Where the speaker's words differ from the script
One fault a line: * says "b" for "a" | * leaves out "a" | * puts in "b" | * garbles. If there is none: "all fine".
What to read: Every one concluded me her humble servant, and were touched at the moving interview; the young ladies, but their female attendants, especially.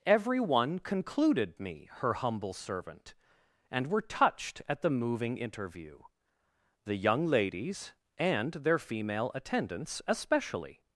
* says "and" for "but"